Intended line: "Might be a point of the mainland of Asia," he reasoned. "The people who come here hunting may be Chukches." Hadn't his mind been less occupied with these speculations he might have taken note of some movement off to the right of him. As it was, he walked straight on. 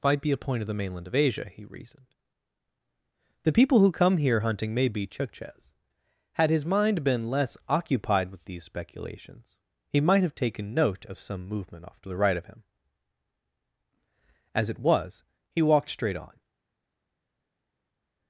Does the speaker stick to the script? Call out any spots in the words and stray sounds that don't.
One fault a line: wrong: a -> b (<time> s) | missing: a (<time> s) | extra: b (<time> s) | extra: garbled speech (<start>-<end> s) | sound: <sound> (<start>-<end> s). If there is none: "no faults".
wrong: Hadn't -> Had (6.3 s)